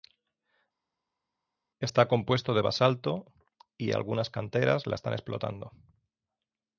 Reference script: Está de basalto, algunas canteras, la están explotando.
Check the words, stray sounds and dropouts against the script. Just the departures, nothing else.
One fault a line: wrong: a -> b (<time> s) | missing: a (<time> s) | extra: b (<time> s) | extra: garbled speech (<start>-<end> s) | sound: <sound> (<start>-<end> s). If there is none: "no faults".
extra: compuesto (2.1 s)
extra: y (3.8 s)